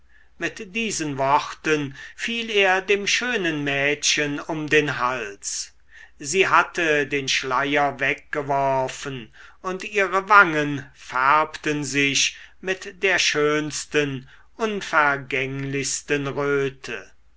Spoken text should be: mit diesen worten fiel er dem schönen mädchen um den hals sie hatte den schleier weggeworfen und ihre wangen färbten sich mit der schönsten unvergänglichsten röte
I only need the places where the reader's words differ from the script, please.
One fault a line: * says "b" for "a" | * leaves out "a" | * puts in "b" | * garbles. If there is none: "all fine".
all fine